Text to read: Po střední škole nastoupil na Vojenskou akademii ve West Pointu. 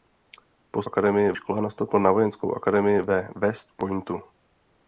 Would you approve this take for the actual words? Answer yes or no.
no